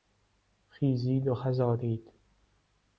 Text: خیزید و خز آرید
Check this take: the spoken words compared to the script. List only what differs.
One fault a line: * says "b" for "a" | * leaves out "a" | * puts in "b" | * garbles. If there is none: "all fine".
all fine